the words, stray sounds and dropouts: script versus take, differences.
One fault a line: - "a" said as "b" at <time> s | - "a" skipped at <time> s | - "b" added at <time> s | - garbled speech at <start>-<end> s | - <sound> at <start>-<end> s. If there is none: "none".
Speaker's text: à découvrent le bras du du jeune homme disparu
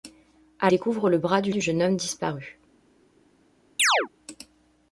- chirp at 3.8-4.1 s